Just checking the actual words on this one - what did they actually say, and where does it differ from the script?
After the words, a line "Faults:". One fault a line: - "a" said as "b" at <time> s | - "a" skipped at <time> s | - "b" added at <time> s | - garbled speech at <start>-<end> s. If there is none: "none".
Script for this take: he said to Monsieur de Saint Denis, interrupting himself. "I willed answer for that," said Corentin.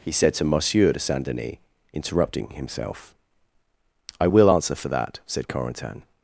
he said to Monsieur de Saint Denis, interrupting himself. "I will answer for that," said Corentin.
Faults:
- "willed" said as "will" at 4.3 s